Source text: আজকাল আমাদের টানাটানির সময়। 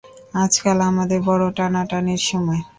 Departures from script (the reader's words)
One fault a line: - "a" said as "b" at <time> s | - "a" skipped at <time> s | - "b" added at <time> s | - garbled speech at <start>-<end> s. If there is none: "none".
- "বড়ো" added at 1.3 s